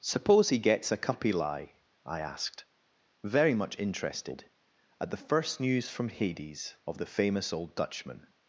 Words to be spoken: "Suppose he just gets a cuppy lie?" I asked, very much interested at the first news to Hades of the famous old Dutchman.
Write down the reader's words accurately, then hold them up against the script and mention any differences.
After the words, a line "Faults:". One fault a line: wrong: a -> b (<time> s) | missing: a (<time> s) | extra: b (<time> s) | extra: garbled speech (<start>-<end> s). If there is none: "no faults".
"Suppose he gets a cuppy lie?" I asked, very much interested at the first news from Hades of the famous old Dutchman.
Faults:
missing: just (0.6 s)
wrong: to -> from (5.9 s)